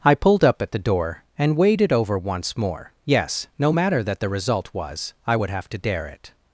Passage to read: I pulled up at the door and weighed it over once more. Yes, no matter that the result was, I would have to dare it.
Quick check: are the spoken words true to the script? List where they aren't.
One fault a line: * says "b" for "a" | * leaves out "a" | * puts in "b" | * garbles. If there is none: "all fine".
all fine